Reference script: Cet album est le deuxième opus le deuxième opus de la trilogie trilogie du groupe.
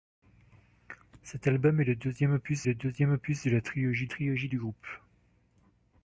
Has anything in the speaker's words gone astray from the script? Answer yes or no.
no